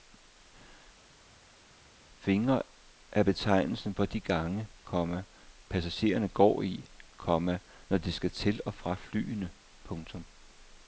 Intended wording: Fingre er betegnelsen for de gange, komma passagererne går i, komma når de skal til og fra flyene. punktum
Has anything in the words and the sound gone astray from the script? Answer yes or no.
no